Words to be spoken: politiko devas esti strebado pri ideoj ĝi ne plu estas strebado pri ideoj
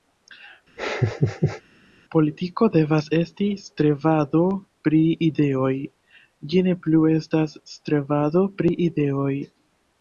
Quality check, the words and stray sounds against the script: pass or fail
fail